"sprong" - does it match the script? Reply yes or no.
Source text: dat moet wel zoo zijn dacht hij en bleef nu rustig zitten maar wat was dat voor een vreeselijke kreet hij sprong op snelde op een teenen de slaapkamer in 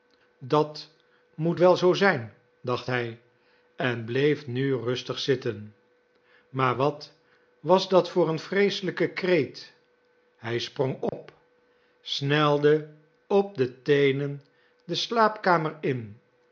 yes